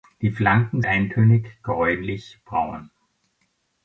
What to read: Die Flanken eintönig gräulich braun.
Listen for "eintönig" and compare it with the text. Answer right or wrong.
right